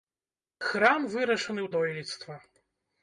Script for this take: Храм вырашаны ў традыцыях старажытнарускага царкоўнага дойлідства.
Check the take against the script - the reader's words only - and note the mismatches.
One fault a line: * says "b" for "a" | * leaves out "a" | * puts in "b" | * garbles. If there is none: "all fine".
* leaves out "традыцыях старажытнарускага царкоўнага"